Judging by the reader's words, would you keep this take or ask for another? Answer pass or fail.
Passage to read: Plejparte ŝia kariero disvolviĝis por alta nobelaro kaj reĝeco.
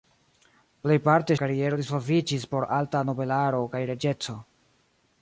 fail